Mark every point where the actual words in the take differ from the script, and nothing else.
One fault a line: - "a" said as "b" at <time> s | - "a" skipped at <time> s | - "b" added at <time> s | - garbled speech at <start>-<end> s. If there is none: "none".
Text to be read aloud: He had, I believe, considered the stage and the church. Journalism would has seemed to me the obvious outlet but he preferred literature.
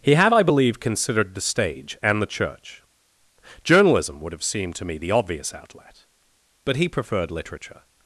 - "has" said as "have" at 4.3 s